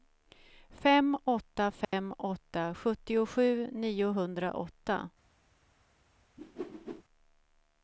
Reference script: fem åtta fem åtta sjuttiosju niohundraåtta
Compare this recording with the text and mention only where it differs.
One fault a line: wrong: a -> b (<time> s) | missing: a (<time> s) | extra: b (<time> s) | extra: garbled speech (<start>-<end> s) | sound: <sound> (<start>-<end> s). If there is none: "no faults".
sound: dropout (1.8-1.9 s)
sound: whoosh (6.4-7.0 s)